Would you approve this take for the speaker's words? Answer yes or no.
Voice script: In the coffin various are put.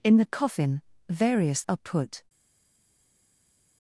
yes